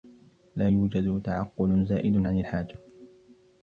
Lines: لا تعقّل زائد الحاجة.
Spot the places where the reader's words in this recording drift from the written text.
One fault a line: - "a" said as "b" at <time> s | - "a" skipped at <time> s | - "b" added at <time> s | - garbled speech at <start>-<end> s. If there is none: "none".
- "يوجد" added at 0.7 s
- "عن" added at 2.2 s